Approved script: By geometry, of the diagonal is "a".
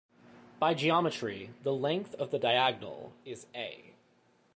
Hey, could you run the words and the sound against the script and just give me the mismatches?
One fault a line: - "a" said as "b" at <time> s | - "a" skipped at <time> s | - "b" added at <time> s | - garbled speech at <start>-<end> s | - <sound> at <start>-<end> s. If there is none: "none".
- "the length" added at 1.6 s